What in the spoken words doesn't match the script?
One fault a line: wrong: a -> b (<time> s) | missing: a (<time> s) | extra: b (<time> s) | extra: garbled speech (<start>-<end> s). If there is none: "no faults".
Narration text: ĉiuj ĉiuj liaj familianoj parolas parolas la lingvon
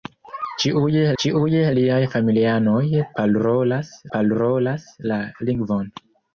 no faults